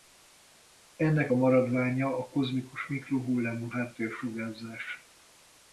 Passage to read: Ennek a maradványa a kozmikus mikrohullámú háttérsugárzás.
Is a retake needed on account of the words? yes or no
no